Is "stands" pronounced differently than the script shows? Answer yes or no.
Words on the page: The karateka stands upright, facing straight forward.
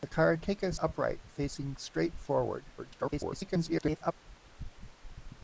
yes